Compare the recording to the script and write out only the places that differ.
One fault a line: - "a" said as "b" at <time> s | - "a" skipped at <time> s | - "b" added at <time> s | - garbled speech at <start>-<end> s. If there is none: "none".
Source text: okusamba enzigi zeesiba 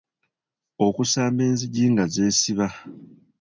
- "nga" added at 1.9 s